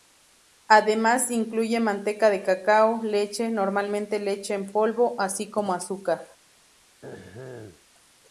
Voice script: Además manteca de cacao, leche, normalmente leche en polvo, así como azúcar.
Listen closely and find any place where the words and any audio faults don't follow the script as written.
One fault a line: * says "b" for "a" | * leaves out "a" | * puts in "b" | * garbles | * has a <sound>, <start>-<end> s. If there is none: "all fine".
* puts in "incluye"
* has a throat clearing, 7.0-7.9 s